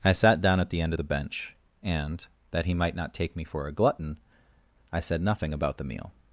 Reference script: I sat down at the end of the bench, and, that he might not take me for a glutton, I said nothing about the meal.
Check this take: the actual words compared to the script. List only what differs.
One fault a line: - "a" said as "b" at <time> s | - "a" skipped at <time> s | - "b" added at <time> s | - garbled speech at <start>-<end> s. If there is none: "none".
none